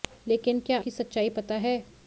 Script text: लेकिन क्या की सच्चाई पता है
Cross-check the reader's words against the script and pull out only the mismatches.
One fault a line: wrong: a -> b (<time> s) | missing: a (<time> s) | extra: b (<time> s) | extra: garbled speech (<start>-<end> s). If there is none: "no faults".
no faults